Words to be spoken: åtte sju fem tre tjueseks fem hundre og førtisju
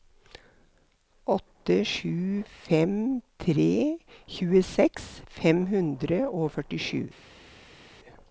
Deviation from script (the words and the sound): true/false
false